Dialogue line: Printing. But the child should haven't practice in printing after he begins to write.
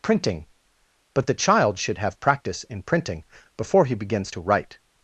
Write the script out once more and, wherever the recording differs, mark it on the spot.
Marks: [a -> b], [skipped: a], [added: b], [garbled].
Printing. But the child should [haven't -> have] practice in printing [after -> before] he begins to write.